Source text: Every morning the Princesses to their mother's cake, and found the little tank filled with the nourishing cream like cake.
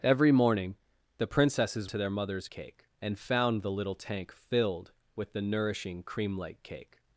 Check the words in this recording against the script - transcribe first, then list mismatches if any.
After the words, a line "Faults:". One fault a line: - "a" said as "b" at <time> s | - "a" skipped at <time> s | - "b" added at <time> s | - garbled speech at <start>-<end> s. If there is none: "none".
Every morning the Princesses to their mother's cake, and found the little tank filled with the nourishing cream like cake.
Faults:
none